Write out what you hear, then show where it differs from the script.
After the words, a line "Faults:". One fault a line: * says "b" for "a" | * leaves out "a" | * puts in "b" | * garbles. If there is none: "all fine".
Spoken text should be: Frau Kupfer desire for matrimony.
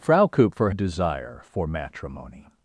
Frau Kupfer desire for matrimony.
Faults:
all fine